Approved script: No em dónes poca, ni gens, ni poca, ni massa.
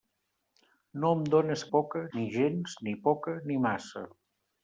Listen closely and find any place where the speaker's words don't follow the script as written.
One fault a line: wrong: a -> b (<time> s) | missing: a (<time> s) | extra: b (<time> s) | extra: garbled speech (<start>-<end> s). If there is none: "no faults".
no faults